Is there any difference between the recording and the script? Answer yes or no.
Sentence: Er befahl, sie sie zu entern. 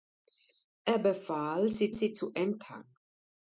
no